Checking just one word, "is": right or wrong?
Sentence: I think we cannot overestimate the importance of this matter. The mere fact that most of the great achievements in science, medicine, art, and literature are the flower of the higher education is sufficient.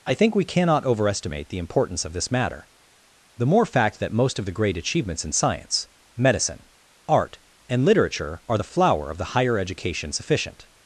wrong